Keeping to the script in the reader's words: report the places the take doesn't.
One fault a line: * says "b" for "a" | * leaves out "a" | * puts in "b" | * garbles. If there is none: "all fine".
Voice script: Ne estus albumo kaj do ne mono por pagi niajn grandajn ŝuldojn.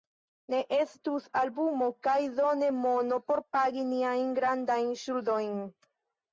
all fine